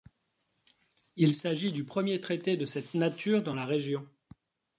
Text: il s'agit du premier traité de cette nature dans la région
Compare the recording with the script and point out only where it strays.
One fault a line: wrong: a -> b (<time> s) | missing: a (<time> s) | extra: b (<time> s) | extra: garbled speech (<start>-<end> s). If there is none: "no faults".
no faults